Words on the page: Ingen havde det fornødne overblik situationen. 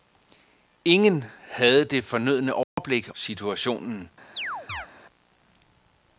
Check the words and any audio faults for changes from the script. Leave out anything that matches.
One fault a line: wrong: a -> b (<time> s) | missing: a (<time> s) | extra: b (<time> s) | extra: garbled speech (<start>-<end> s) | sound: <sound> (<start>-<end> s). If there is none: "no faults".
sound: dropout (2.6-2.8 s)
sound: chirp (4.3-4.9 s)